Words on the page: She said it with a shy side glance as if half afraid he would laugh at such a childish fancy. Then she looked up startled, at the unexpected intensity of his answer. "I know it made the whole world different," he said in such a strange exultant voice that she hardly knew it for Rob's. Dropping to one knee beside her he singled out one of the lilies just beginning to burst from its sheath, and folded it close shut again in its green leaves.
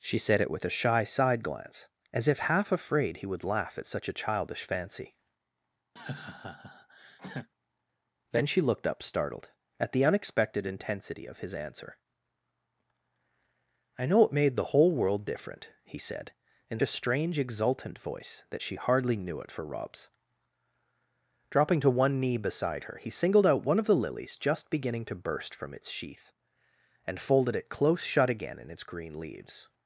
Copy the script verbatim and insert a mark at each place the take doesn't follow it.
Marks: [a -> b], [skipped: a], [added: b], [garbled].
She said it with a shy side glance as if half afraid he would laugh at such a childish fancy. Then she looked up startled, at the unexpected intensity of his answer. "I know it made the whole world different," he said in [skipped: such] a strange exultant voice that she hardly knew it for Rob's. Dropping to one knee beside her he singled out one of the lilies just beginning to burst from its sheath, and folded it close shut again in its green leaves.